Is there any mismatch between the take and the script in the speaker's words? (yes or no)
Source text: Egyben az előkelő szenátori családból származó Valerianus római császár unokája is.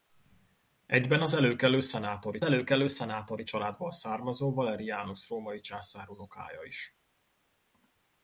yes